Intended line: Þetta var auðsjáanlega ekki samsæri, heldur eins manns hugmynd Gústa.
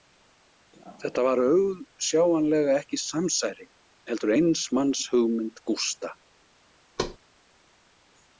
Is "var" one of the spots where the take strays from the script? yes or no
no